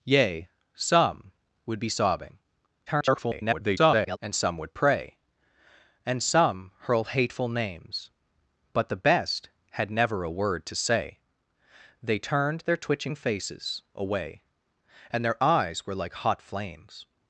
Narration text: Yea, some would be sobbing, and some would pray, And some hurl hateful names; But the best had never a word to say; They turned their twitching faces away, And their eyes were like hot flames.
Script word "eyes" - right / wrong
right